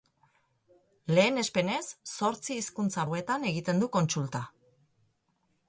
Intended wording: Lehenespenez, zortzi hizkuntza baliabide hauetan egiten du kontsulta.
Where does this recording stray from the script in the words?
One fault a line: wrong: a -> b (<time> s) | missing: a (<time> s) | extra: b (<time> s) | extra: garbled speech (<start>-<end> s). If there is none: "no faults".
missing: baliabide (3.1 s)